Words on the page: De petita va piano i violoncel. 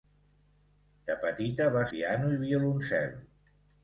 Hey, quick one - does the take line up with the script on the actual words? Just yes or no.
yes